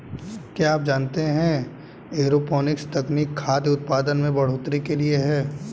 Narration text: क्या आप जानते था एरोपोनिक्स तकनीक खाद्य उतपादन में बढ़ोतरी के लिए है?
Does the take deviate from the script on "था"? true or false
true